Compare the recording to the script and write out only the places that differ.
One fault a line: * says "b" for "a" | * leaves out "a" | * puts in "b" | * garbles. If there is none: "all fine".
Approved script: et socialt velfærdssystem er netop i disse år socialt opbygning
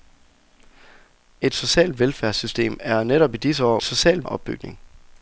all fine